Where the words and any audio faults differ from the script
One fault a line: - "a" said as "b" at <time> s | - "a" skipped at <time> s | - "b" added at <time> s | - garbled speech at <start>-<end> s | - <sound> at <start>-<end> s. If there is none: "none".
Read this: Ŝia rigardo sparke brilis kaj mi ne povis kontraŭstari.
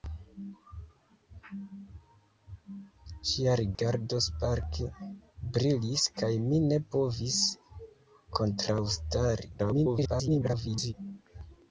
- dropout at 3.7-3.8 s
- garbled speech at 9.6-10.9 s